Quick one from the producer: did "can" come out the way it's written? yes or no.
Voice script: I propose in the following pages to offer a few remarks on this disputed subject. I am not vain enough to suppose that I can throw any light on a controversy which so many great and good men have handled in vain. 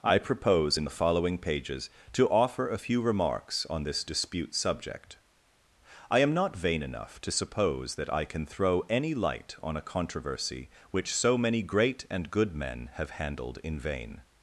yes